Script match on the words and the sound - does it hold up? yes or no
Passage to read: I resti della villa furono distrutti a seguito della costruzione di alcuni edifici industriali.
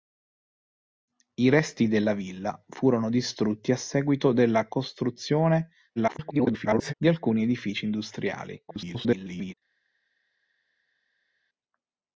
no